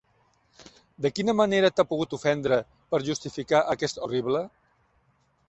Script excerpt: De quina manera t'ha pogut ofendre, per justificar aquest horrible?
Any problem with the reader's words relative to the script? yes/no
no